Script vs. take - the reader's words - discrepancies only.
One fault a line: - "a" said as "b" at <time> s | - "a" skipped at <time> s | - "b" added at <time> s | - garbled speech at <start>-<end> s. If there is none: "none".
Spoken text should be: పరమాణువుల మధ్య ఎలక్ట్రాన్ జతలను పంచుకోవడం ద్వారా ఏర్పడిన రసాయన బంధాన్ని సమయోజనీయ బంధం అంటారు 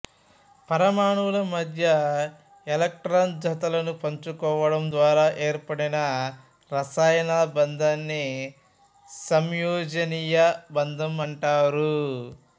none